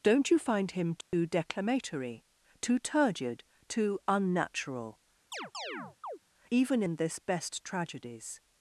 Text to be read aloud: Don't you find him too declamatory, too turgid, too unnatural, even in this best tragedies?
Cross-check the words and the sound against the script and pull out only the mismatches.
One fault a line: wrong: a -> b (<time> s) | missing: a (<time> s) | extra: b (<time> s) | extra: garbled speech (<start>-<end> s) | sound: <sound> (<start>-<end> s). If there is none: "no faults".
sound: dropout (1.0-1.1 s)
sound: chirp (5.3-6.2 s)